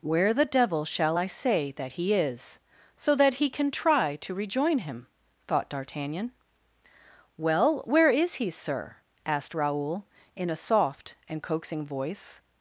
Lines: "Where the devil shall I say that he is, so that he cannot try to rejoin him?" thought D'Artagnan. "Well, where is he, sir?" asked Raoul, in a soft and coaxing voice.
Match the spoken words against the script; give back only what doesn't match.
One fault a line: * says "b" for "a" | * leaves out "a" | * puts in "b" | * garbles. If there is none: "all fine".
* says "can" for "cannot"